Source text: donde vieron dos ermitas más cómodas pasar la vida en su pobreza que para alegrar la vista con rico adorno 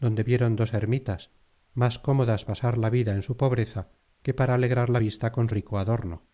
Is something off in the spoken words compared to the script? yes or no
no